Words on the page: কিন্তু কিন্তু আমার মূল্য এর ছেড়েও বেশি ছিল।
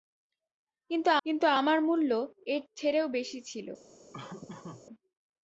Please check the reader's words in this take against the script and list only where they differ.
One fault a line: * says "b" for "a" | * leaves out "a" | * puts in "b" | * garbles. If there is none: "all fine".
all fine